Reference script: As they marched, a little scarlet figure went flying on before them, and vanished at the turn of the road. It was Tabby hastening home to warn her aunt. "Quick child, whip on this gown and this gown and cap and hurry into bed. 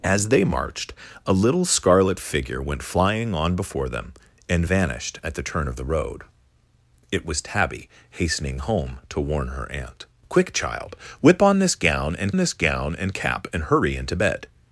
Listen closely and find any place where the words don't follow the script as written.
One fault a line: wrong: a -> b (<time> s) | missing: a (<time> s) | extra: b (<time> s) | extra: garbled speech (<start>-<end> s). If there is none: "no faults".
no faults